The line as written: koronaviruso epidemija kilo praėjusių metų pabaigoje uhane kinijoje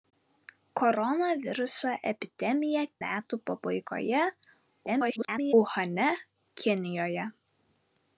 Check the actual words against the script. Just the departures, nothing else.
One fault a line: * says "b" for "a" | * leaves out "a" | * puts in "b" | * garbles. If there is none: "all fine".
* leaves out "kilo praėjusių"
* garbles